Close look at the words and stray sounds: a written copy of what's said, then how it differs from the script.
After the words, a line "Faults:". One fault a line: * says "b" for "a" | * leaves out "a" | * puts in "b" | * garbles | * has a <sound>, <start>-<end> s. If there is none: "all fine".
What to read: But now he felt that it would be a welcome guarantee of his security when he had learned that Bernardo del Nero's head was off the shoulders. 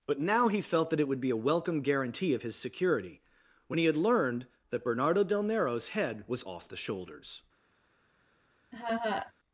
But now he felt that it would be a welcome guarantee of his security when he had learned that Bernardo del Nero's head was off the shoulders.
Faults:
* has a laugh, 8.7-9.3 s